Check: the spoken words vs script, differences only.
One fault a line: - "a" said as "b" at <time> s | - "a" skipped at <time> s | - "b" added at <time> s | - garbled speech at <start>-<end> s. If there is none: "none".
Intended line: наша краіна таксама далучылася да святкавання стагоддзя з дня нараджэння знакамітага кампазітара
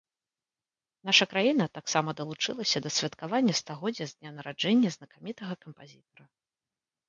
none